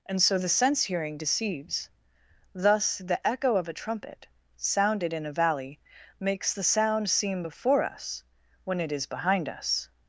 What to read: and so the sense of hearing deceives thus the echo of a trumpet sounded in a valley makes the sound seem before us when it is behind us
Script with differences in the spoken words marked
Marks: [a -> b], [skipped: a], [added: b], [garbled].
and so the sense [skipped: of] hearing deceives thus the echo of a trumpet sounded in a valley makes the sound seem before us when it is behind us